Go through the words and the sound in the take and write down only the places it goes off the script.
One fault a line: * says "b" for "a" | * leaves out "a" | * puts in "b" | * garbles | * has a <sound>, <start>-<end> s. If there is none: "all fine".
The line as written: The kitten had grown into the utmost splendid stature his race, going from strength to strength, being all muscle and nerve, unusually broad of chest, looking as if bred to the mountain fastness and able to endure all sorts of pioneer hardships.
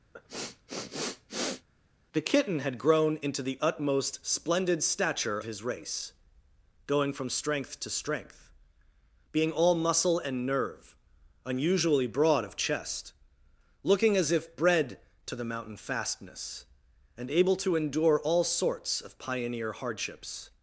* has a sniff, 0.1-1.7 s